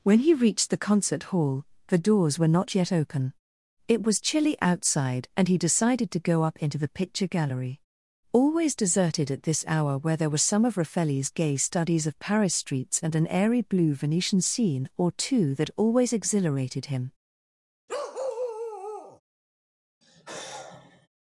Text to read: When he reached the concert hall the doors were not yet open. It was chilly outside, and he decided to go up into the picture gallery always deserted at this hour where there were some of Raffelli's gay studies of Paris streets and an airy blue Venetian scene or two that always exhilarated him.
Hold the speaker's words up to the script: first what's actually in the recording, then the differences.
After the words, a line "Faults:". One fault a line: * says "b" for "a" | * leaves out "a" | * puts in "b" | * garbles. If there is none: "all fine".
When he reached the concert hall the doors were not yet open. It was chilly outside, and he decided to go up into the picture gallery always deserted at this hour where there were some of Raffelli's gay studies of Paris streets and an airy blue Venetian scene or two that always exhilarated him.
Faults:
all fine